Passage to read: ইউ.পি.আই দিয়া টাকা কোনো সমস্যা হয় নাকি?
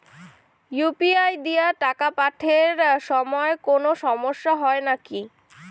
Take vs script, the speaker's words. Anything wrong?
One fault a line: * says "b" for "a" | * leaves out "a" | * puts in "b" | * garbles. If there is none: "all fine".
* puts in "পাঠের সময়"